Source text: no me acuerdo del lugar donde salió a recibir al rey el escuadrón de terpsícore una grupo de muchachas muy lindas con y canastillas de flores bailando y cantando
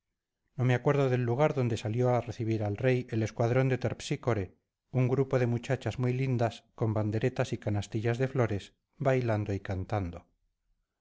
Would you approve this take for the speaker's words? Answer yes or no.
no